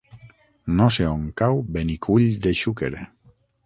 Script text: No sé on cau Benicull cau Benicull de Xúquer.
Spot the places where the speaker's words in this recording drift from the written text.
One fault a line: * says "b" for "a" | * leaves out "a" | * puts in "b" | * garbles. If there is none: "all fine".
* leaves out "cau Benicull"